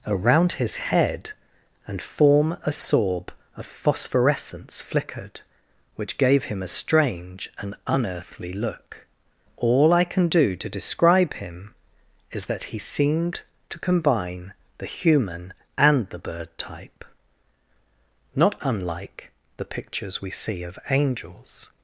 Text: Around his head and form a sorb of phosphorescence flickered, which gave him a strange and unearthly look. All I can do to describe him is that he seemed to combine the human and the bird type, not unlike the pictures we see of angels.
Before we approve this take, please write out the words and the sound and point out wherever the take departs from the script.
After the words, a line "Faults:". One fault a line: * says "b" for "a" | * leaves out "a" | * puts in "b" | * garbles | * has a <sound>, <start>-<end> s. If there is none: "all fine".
Around his head and form a sorb of phosphorescence flickered, which gave him a strange and unearthly look. All I can do to describe him is that he seemed to combine the human and the bird type, not unlike the pictures we see of angels.
Faults:
all fine